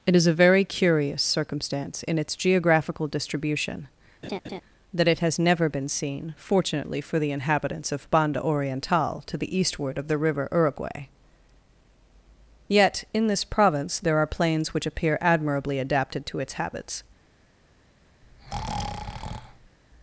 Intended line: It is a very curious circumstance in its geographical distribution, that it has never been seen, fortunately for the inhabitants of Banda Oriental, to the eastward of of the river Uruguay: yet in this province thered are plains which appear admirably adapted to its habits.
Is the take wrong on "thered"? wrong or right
wrong